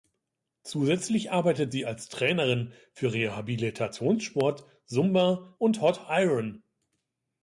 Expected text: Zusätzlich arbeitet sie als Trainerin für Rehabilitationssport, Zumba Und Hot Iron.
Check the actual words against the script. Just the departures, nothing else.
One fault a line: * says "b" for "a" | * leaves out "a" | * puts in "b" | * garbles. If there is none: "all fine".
all fine